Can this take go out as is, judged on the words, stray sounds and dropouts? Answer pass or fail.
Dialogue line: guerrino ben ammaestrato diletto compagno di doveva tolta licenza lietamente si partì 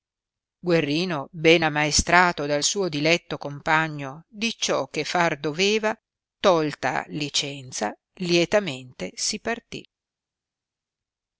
fail